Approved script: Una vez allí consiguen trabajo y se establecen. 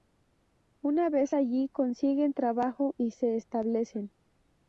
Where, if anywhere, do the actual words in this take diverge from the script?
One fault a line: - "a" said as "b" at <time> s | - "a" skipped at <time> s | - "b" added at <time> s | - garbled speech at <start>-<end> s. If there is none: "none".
none